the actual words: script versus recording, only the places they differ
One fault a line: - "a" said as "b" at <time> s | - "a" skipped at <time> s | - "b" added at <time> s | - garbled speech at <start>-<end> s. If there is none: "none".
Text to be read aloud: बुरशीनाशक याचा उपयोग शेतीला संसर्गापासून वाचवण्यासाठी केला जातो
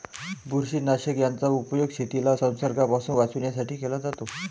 none